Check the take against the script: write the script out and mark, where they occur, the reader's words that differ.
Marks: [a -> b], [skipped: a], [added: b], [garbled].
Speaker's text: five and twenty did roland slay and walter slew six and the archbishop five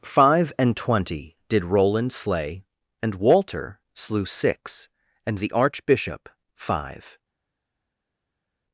five and twenty did roland slay and walter slew six and the archbishop five